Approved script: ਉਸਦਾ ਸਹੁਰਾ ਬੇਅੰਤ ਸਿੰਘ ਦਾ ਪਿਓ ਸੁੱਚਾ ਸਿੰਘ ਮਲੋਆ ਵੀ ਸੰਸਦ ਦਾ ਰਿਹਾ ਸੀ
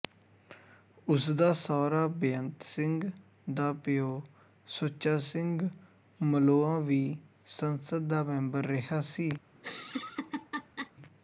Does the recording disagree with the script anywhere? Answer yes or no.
yes